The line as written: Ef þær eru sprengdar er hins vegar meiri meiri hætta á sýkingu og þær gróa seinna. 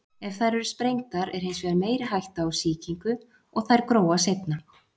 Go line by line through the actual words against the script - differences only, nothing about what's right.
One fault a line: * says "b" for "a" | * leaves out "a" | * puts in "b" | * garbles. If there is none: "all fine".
* leaves out "meiri"